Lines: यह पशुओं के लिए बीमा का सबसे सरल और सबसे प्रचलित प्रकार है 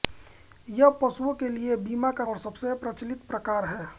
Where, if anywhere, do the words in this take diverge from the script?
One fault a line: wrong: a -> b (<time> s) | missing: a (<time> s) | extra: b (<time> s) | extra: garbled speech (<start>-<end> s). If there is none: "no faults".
missing: सबसे सरल (2.2 s)